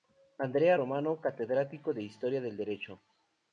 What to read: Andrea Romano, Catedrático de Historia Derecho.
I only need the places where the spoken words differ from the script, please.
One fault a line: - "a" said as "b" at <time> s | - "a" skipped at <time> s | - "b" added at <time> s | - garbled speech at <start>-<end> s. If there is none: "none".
- "del" added at 2.4 s